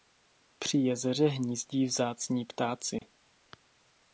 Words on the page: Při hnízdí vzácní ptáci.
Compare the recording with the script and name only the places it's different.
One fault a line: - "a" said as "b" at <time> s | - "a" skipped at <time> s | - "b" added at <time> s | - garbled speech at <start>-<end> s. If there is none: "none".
- "jezeře" added at 0.8 s